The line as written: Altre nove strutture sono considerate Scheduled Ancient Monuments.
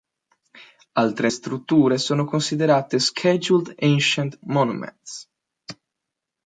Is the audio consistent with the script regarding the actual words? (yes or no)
no